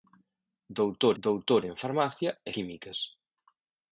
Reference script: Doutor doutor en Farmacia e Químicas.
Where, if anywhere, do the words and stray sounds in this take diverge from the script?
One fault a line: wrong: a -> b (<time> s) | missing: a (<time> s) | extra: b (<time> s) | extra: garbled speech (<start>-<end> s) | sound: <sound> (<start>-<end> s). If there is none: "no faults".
no faults